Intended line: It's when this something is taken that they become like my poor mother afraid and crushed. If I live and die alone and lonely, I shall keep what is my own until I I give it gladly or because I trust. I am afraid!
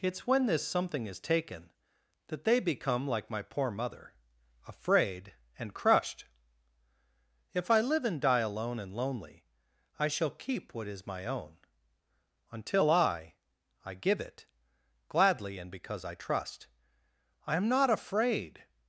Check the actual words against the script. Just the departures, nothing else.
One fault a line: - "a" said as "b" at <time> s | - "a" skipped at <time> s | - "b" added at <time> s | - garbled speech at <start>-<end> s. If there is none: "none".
- "or" said as "and" at 15.6 s
- "not" added at 17.7 s